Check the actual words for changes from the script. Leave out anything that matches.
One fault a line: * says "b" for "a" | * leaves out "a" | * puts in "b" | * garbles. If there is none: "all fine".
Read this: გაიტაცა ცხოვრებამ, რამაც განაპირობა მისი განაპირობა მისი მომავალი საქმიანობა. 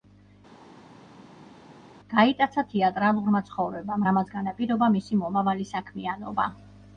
* puts in "თეატრალურმა"
* leaves out "განაპირობა მისი"